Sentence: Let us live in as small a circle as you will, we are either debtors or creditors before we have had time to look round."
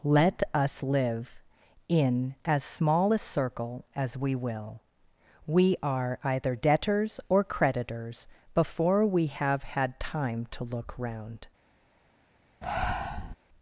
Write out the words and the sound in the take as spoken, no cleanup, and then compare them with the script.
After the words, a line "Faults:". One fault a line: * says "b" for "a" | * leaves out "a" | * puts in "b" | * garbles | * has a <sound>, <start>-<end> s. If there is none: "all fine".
Let us live in as small a circle as we will, we are either debtors or creditors before we have had time to look round."
Faults:
* says "we" for "you"
* has a breath, 12.6-13.4 s